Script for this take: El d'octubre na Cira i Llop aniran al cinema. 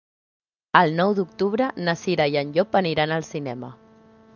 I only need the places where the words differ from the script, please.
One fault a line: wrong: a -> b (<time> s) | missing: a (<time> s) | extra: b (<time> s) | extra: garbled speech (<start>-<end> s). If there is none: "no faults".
extra: nou (1.0 s)
extra: en (2.5 s)